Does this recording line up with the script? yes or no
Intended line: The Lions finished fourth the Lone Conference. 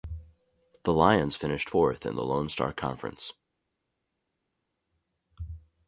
no